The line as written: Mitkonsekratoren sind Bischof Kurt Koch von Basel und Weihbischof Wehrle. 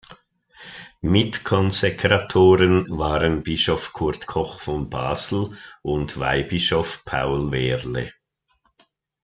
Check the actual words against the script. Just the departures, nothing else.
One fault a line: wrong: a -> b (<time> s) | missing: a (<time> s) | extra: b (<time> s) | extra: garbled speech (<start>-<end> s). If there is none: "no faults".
wrong: sind -> waren (2.9 s)
extra: Paul (7.0 s)